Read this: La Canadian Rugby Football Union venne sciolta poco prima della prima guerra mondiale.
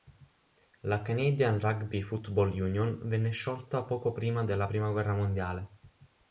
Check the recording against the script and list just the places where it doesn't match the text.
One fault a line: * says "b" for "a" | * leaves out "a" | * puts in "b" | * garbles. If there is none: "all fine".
all fine